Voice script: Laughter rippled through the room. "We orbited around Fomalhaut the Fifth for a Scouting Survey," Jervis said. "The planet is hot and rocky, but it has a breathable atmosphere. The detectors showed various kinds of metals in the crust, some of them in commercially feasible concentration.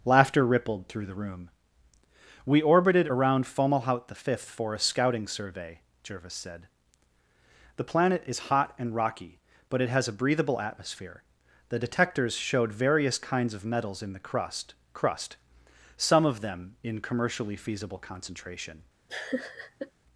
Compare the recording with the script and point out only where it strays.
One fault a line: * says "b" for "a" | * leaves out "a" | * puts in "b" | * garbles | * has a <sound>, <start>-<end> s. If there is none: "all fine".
* puts in "crust"
* has a laugh, 19.1-19.9 s